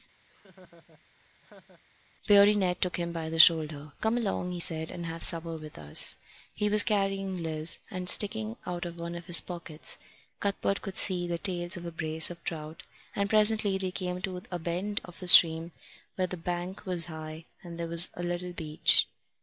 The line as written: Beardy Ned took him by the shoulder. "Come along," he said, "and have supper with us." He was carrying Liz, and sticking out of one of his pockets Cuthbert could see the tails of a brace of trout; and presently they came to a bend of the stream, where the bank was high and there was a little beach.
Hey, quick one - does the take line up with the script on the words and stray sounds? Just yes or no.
no